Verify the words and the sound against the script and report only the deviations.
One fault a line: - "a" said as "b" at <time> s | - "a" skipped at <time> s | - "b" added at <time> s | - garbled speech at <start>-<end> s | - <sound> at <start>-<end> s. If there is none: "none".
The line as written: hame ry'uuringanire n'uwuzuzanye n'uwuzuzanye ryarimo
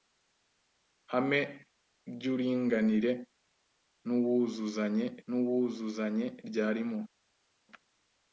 none